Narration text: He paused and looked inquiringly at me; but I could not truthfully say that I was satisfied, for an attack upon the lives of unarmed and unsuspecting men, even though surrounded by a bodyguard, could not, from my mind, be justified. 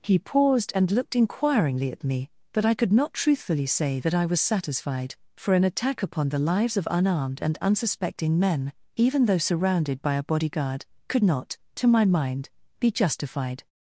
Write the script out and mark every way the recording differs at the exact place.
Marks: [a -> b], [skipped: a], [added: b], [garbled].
He paused and looked inquiringly at me; but I could not truthfully say that I was satisfied, for an attack upon the lives of unarmed and unsuspecting men, even though surrounded by a bodyguard, could not, [from -> to] my mind, be justified.